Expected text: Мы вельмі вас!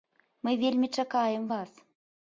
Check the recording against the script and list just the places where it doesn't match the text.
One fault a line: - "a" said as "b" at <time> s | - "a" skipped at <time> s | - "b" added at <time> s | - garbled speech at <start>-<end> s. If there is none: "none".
- "чакаем" added at 1.0 s